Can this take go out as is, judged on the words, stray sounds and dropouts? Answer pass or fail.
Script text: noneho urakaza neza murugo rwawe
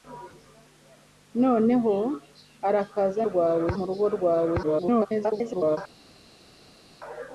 fail